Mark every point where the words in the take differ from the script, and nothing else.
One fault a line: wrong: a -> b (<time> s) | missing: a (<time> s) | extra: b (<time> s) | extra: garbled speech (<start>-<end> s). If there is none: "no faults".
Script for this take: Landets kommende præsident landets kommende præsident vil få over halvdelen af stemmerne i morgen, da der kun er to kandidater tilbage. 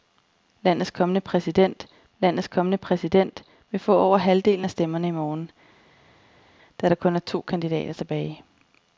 no faults